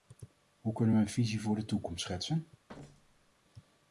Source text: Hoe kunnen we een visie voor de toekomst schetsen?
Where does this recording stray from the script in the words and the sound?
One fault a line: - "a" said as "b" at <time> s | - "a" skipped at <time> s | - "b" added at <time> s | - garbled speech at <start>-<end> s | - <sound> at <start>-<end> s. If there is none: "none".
- thud at 2.7-3.3 s